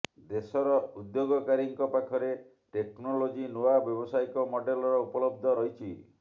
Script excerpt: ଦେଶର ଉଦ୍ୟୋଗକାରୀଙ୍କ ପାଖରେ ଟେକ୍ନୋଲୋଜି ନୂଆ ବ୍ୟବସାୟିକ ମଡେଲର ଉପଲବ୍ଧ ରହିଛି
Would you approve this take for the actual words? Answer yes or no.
yes